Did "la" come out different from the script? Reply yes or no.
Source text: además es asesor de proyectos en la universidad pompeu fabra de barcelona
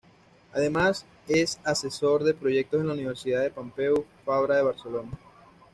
no